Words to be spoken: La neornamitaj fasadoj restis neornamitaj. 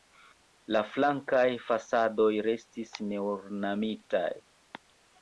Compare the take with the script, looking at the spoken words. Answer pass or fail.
fail